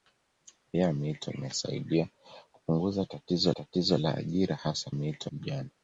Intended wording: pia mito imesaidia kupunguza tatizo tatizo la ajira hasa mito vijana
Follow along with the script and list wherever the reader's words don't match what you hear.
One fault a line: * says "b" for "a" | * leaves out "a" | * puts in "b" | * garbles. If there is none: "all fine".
all fine